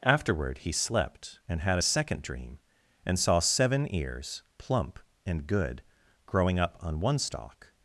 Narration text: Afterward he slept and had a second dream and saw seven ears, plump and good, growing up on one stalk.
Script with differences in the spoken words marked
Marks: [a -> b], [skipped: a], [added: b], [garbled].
Afterward he slept and had a second dream and saw seven ears, plump and good, growing up on one stalk.